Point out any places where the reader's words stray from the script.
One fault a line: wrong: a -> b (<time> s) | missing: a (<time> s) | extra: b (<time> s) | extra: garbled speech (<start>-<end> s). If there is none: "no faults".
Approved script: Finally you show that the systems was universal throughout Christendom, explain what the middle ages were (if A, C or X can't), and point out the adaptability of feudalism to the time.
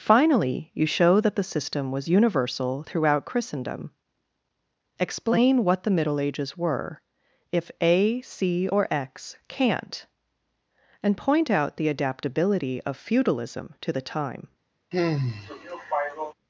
wrong: systems -> system (1.4 s)